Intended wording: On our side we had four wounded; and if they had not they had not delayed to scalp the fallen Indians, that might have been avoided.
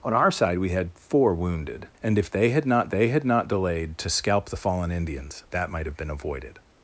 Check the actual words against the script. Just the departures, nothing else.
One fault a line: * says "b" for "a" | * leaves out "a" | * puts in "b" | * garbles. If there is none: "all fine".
all fine